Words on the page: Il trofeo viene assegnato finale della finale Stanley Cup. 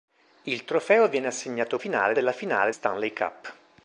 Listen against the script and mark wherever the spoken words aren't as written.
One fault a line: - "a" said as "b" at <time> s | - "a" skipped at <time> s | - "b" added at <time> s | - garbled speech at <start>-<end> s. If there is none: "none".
none